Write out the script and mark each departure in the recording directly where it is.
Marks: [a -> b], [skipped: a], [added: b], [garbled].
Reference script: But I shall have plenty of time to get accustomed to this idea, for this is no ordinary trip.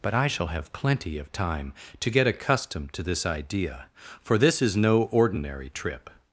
But I shall have plenty of time to get accustomed to this idea, for this is no ordinary trip.